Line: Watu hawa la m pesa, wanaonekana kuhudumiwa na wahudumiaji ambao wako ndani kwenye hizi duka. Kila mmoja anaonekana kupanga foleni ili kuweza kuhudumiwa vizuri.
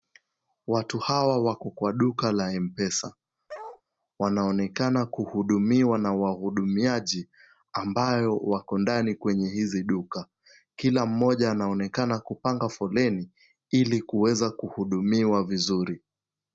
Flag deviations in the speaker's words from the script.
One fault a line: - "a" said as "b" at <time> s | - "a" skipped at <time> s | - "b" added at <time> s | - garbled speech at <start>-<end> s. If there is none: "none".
- "wako kwa duka" added at 1.4 s